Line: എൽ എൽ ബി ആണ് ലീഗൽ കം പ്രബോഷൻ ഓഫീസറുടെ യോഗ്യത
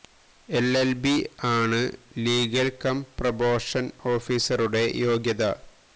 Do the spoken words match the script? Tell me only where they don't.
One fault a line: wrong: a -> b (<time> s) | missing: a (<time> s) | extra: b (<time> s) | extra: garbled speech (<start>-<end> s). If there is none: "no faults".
no faults